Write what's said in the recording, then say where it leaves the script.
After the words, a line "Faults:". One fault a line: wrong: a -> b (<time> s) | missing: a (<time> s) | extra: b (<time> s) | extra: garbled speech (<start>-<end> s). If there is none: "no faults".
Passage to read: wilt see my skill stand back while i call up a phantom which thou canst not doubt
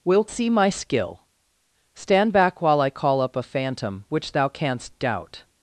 wilt see my skill stand back while i call up a phantom which thou canst doubt
Faults:
missing: not (5.0 s)